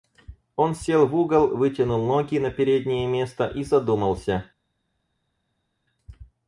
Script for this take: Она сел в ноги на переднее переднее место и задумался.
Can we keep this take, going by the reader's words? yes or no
no